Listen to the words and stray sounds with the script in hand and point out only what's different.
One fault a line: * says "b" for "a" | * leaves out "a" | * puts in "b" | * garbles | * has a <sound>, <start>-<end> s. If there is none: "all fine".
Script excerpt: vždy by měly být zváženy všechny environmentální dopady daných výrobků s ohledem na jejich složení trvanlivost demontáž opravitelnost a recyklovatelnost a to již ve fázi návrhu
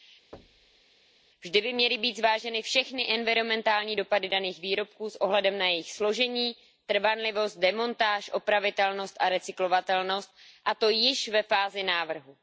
* has a thud, 0.3-0.8 s